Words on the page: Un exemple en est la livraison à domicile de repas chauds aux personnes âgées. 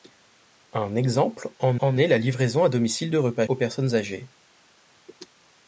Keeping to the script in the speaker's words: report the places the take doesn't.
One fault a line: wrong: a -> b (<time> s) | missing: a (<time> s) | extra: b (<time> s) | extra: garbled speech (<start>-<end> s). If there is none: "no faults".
extra: en (1.8 s)
missing: chauds (3.5 s)